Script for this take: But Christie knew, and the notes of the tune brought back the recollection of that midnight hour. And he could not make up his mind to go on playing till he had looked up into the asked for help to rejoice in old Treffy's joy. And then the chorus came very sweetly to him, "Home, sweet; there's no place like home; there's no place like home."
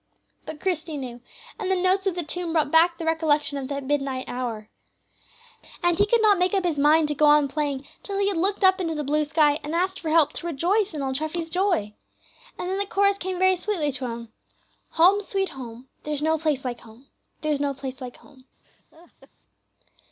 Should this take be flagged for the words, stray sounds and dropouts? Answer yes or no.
yes